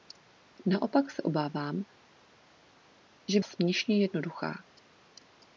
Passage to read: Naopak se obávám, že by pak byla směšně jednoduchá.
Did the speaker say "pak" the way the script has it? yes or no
no